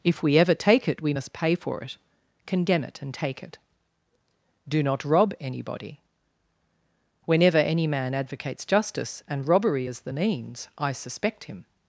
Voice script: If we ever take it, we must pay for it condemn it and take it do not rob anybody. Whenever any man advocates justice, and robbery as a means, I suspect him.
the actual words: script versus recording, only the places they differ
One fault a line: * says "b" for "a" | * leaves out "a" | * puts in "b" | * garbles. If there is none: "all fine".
* says "the" for "a"